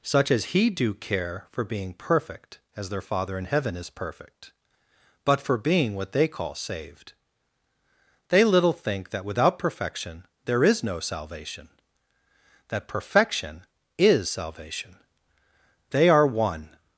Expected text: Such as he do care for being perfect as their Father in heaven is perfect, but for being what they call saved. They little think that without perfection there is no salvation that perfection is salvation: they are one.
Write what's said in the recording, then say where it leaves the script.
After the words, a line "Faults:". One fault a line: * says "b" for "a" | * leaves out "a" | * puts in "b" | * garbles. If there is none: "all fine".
Such as he do care for being perfect as their Father in heaven is perfect, but for being what they call saved. They little think that without perfection there is no salvation that perfection is salvation: they are one.
Faults:
all fine